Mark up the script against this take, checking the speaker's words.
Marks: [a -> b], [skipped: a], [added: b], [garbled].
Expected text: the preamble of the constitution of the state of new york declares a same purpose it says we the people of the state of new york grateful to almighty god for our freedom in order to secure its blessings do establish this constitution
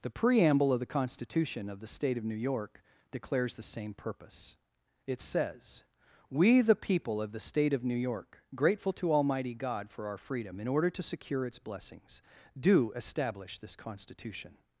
the preamble of the constitution of the state of new york declares [a -> the] same purpose it says we the people of the state of new york grateful to almighty god for our freedom in order to secure its blessings do establish this constitution